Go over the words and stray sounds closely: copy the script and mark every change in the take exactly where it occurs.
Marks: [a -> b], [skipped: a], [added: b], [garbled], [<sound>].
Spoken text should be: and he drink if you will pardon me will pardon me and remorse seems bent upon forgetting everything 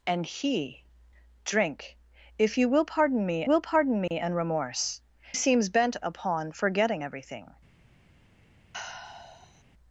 and he drink if you will pardon me will pardon me [dropout] and remorse seems bent upon forgetting everything [sigh]